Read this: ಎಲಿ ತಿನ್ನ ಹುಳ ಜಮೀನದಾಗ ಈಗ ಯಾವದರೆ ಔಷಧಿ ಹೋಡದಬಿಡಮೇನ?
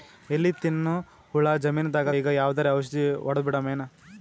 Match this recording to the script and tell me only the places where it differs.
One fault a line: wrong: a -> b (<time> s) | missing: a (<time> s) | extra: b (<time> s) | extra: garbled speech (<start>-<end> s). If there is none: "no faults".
no faults